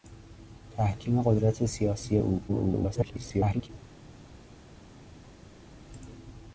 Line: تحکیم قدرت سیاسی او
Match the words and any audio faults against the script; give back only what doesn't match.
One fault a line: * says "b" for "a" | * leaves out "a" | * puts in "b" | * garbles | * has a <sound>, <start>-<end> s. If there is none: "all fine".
* garbles